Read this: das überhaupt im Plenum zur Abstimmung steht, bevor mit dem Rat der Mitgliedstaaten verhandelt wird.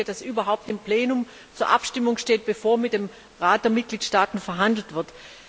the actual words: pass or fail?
pass